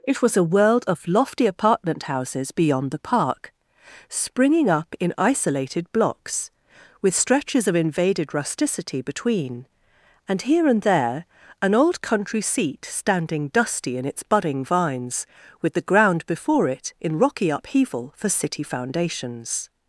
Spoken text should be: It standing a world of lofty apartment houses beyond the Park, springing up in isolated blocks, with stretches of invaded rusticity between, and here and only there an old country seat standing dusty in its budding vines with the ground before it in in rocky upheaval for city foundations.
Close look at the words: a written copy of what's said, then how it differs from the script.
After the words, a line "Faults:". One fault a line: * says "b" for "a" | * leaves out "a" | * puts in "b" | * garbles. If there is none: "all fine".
It was a world of lofty apartment houses beyond the Park, springing up in isolated blocks, with stretches of invaded rusticity between, and here and there an old country seat standing dusty in its budding vines with the ground before it in rocky upheaval for city foundations.
Faults:
* says "was" for "standing"
* leaves out "only"
* leaves out "in"